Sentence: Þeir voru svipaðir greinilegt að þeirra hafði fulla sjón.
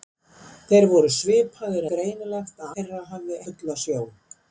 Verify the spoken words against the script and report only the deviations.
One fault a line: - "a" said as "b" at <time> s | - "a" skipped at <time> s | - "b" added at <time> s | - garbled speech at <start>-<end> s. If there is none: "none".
none